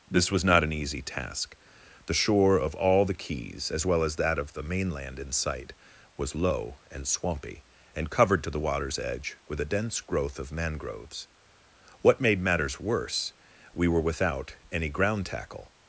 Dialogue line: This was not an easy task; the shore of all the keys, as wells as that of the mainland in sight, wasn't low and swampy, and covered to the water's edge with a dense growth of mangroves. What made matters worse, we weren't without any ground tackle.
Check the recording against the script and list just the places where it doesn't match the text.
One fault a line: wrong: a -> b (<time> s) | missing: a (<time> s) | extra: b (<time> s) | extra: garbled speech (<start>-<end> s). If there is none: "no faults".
wrong: wells -> well (3.9 s)
wrong: wasn't -> was (6.2 s)
wrong: weren't -> were (13.9 s)